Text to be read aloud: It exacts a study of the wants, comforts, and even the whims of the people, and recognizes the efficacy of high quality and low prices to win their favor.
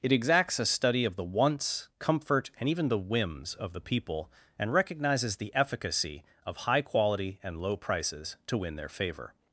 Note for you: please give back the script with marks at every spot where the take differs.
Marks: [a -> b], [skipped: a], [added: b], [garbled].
It exacts a study of the wants, [comforts, -> comfort] and even the whims of the people, and recognizes the efficacy of high quality and low prices to win their favor.